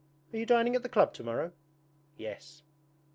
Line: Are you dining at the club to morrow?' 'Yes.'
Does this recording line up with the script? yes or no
yes